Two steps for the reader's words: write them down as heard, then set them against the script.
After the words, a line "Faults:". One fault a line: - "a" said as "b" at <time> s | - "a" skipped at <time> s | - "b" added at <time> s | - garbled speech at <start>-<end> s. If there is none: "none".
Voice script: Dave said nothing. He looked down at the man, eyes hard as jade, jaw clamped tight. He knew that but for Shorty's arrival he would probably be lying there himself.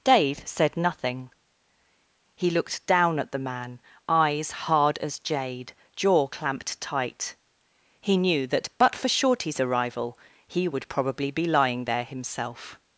Dave said nothing. He looked down at the man, eyes hard as jade, jaw clamped tight. He knew that but for Shorty's arrival he would probably be lying there himself.
Faults:
none